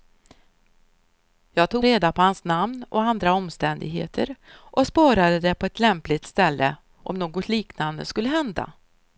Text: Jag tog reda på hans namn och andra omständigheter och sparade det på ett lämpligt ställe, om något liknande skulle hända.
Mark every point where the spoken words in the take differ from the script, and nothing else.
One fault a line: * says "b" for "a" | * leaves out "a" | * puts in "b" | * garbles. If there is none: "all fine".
all fine